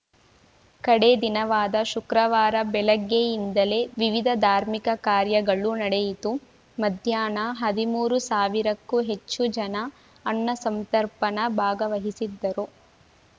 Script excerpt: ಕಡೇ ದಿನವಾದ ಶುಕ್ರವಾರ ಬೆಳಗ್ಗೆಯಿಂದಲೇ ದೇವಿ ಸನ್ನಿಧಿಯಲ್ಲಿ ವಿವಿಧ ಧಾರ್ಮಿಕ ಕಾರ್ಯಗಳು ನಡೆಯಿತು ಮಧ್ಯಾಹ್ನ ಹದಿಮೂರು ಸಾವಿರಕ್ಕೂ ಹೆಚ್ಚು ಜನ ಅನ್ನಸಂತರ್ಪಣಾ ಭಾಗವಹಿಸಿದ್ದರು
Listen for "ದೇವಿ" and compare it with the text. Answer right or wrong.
wrong